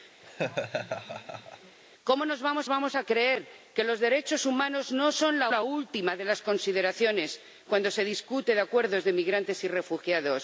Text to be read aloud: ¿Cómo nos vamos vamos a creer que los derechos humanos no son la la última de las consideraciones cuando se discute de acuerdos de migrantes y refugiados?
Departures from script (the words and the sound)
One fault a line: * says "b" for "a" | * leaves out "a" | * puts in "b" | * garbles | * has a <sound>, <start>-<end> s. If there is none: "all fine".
* has a laugh, 0.2-1.8 s